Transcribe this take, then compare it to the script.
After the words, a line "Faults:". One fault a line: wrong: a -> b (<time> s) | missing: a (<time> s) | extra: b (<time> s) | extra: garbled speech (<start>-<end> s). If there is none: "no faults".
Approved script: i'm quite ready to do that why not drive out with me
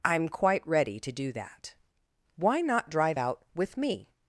i'm quite ready to do that why not drive out with me
Faults:
no faults